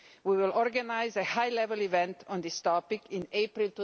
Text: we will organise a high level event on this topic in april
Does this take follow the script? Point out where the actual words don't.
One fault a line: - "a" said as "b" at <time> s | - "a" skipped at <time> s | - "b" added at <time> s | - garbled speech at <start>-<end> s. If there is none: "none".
none